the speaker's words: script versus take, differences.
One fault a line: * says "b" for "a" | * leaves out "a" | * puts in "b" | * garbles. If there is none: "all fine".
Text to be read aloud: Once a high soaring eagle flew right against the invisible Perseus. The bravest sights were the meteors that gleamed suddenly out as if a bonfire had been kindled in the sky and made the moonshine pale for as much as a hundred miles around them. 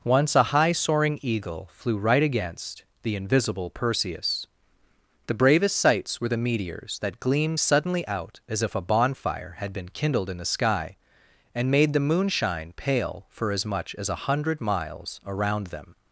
all fine